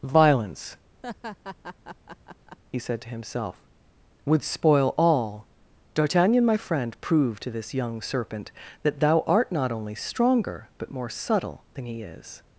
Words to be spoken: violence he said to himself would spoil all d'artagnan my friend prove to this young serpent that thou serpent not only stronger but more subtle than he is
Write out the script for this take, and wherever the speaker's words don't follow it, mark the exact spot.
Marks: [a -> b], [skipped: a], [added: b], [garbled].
violence he said to himself would spoil all d'artagnan my friend prove to this young serpent that thou [serpent -> art] not only stronger but more subtle than he is